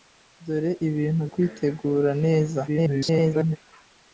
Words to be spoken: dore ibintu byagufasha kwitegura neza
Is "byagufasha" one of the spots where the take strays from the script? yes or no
yes